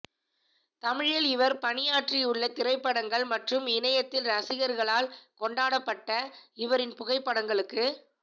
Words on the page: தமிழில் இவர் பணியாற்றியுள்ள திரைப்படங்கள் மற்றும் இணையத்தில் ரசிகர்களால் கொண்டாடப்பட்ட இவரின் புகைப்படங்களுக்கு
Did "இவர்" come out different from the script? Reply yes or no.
no